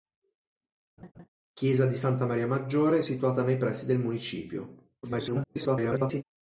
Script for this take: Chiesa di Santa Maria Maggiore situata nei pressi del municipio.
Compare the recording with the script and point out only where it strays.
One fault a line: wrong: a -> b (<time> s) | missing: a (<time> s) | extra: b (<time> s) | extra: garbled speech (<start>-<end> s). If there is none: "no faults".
extra: garbled speech (5.0-6.2 s)